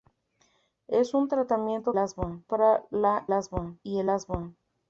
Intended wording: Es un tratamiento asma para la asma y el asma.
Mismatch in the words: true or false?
false